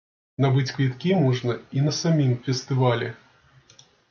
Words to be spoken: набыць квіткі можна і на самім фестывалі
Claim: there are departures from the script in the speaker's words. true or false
false